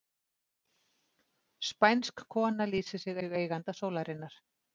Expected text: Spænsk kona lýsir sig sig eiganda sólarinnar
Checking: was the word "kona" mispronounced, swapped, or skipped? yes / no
no